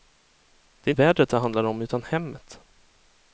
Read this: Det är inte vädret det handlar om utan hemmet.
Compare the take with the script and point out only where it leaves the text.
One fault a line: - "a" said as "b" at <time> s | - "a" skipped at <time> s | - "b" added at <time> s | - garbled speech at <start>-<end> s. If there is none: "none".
- "inte" skipped at 0.9 s